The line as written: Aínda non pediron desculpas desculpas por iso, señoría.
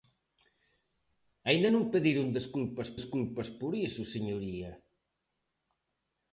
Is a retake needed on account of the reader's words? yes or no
no